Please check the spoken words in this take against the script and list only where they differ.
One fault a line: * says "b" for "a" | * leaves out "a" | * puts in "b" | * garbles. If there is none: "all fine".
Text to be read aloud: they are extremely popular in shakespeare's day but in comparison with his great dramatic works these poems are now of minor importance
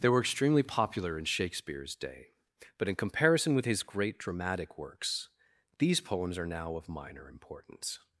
* says "were" for "are"